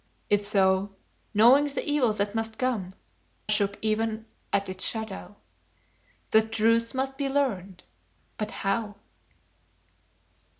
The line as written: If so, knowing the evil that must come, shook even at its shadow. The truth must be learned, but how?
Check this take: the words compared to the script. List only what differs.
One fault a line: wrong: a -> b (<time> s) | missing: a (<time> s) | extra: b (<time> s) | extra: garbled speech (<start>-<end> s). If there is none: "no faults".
no faults